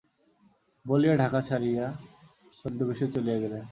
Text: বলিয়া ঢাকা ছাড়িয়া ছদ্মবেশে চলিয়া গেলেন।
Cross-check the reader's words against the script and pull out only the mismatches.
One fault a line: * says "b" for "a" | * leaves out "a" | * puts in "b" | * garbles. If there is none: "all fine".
all fine